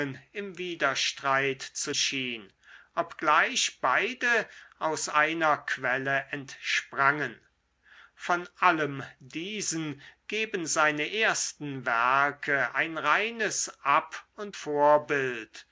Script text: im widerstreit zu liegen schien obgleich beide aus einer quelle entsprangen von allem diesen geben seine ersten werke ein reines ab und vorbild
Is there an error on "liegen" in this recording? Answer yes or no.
yes